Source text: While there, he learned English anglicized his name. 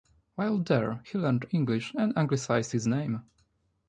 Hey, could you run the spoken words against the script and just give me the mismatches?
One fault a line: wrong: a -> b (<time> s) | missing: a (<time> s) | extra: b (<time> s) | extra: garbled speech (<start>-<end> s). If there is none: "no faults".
extra: and (1.9 s)